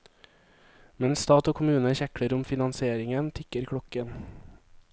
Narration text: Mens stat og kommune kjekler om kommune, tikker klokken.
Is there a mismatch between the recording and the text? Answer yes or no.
yes